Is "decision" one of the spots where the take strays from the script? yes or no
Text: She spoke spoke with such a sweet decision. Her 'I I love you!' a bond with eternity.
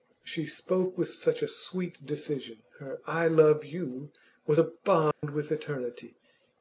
no